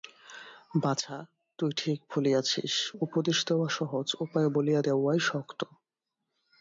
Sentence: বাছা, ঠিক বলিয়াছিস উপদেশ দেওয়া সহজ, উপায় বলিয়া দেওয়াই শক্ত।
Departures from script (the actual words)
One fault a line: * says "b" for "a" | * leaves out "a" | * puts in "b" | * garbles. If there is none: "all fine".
* puts in "তুই"